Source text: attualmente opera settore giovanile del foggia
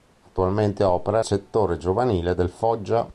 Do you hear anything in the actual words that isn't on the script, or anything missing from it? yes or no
no